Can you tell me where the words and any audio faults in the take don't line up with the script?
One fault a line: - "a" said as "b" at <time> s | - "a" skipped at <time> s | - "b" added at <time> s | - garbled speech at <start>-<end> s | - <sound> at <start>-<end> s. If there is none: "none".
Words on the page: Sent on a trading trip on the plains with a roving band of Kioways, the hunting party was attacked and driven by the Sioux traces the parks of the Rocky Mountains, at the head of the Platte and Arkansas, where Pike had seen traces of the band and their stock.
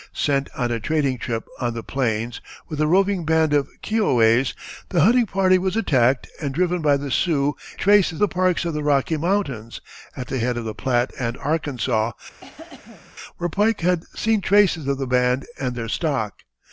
- cough at 12.4-13.2 s